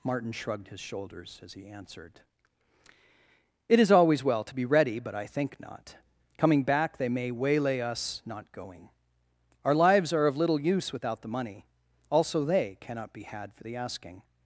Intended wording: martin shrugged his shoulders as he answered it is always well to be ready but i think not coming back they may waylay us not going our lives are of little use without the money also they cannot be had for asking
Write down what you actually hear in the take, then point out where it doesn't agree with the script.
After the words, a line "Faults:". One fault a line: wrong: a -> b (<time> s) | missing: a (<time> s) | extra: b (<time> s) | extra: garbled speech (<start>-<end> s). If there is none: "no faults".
martin shrugged his shoulders as he answered it is always well to be ready but i think not coming back they may waylay us not going our lives are of little use without the money also they cannot be had for the asking
Faults:
extra: the (13.6 s)